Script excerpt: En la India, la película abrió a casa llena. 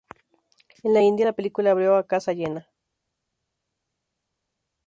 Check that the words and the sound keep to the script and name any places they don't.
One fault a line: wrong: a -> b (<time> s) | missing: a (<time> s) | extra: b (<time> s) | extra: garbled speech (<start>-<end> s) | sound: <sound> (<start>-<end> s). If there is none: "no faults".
no faults